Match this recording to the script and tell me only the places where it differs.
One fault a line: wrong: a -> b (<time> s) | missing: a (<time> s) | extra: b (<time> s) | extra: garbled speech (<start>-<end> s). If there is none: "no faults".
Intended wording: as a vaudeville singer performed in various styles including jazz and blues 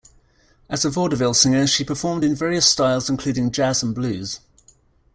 extra: she (1.7 s)